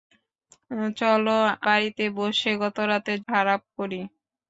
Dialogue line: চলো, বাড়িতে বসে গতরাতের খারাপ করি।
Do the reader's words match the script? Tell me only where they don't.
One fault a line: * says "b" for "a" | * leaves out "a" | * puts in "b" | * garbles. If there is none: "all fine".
all fine